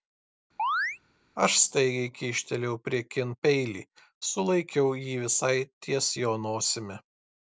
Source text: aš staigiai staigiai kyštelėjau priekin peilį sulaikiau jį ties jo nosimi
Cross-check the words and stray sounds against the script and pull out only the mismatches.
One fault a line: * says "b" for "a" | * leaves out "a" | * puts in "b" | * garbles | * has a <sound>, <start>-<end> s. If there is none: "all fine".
* has a chirp, 0.6-1.0 s
* leaves out "staigiai"
* puts in "visai"